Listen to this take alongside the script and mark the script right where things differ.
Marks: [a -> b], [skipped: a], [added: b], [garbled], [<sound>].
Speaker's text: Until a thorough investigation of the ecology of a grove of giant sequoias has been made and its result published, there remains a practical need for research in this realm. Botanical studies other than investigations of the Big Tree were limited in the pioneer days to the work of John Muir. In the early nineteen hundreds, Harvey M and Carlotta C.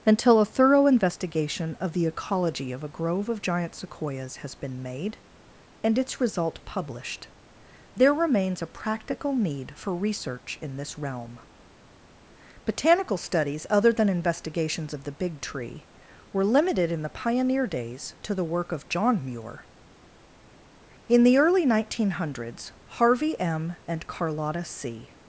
Until a thorough investigation of the ecology of a grove of giant sequoias has been made and its result published, there remains a practical need for research in this realm. Botanical studies other than investigations of the Big Tree were limited in the pioneer days to the work of John Muir. In the early nineteen hundreds, Harvey M and Carlotta C.